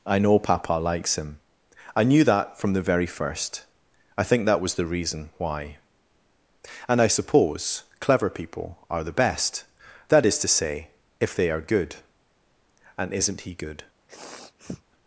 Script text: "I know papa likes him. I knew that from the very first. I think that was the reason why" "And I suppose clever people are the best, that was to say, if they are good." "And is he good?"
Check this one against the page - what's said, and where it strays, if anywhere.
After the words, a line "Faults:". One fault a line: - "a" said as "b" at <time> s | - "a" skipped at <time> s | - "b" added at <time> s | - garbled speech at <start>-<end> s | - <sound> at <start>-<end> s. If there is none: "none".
"I know papa likes him. I knew that from the very first. I think that was the reason why" "And I suppose clever people are the best, that is to say, if they are good." "And isn't he good?"
Faults:
- "was" said as "is" at 10.2 s
- "is" said as "isn't" at 13.1 s
- sniff at 14.1-14.8 s